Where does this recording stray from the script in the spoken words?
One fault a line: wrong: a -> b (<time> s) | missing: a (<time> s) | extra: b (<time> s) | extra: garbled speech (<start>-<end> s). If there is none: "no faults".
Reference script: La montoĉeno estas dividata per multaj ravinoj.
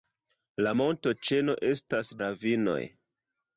missing: dividata per multaj (2.1 s)